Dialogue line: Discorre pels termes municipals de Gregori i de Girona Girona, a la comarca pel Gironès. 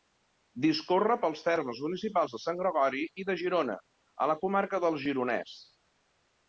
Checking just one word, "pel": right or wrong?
wrong